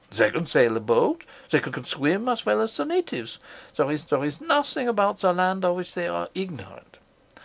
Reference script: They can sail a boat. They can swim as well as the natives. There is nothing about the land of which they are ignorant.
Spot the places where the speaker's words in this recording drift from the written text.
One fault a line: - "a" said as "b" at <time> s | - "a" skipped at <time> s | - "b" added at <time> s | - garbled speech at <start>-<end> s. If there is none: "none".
- "can" added at 1.7 s
- "there is" added at 4.1 s